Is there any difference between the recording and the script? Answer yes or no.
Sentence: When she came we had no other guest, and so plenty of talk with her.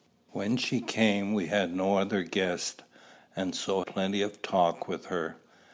no